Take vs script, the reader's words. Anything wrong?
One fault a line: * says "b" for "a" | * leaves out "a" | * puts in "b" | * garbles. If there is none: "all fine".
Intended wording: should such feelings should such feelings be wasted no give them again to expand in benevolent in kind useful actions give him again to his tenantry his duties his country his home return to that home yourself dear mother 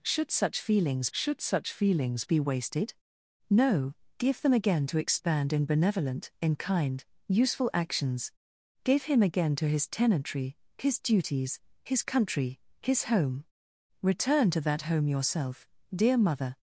all fine